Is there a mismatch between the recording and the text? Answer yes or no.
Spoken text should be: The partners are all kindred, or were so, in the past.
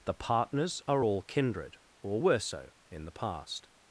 no